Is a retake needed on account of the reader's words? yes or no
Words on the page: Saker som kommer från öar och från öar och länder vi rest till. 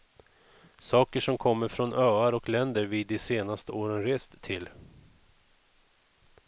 yes